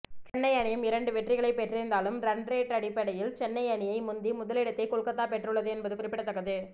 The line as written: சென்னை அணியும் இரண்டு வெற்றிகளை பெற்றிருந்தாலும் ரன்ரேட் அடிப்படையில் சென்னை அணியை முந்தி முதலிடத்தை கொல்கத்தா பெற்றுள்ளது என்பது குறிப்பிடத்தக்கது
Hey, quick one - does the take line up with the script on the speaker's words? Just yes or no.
yes